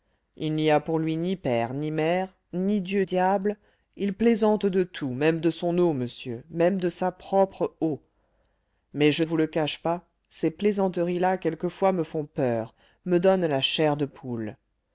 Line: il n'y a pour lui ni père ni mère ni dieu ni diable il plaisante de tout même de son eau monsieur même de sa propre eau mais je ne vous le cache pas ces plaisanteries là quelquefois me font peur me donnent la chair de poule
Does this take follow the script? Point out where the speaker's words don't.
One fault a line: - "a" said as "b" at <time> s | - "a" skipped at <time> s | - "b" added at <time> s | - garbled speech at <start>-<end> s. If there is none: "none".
- "ni" skipped at 3.0 s
- "ne" skipped at 9.2 s